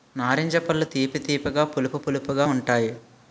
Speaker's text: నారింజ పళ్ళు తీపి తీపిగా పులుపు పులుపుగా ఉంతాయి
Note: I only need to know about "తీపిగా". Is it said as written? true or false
true